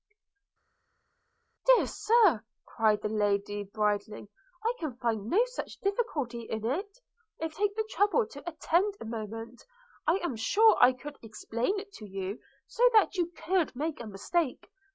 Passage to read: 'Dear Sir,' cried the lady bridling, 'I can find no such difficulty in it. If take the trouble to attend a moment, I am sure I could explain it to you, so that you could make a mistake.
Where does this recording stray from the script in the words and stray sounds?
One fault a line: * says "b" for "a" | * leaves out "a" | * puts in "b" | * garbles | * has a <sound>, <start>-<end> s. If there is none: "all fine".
all fine